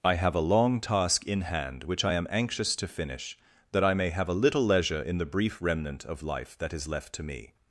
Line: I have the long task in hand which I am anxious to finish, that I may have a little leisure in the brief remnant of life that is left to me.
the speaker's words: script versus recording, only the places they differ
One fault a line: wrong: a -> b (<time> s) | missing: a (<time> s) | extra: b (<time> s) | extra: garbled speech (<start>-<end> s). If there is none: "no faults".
wrong: the -> a (0.3 s)